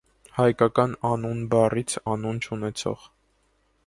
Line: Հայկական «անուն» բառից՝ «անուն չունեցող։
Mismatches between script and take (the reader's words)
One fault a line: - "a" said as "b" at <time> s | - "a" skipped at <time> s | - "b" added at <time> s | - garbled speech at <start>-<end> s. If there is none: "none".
none